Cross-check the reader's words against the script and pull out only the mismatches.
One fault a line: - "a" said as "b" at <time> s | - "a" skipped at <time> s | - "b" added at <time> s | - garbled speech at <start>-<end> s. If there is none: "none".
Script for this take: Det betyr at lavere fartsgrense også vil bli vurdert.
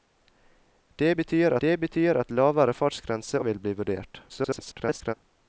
- "det betyr" added at 1.6 s
- "også" skipped at 3.4 s
- garbled speech at 4.3-5.1 s